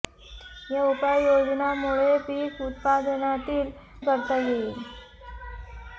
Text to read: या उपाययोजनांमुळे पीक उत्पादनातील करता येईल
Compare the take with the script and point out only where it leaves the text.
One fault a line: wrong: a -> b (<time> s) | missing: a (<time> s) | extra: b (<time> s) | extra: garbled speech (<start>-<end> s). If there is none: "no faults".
no faults